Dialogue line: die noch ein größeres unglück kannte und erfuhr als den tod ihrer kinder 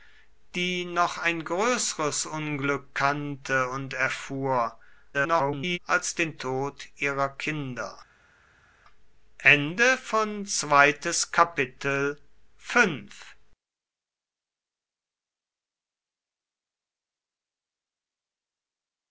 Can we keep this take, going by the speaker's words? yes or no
no